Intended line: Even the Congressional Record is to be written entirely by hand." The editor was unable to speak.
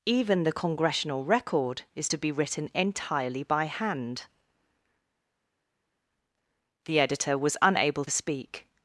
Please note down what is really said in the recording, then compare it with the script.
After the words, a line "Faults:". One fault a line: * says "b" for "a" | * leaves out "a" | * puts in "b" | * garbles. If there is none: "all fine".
Even the Congressional Record is to be written entirely by hand." The editor was unable speak.
Faults:
* leaves out "to"